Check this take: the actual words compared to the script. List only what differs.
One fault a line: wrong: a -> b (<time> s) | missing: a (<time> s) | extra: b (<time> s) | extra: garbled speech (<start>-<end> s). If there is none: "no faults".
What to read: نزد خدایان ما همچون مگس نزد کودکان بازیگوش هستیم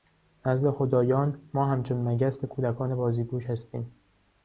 missing: نزد (2.5 s)